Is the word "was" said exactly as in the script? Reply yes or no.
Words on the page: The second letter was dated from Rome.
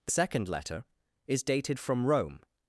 no